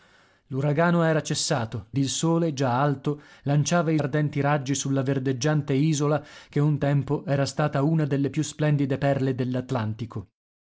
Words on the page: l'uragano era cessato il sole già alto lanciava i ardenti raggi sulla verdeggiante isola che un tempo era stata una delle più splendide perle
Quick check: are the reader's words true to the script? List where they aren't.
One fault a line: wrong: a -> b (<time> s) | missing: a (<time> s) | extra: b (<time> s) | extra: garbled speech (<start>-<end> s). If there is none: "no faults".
no faults